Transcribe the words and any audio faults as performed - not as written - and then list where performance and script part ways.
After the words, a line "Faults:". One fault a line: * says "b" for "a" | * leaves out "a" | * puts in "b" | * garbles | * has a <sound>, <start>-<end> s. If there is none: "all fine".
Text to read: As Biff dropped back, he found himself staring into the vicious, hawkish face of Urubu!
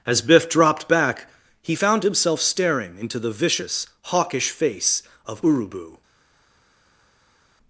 As Biff dropped back, he found himself staring into the vicious, hawkish face of Urubu!
Faults:
all fine